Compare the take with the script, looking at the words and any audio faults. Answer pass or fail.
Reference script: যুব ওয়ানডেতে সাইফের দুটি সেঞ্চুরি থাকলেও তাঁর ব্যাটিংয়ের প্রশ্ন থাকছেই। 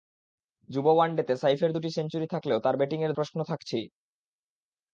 pass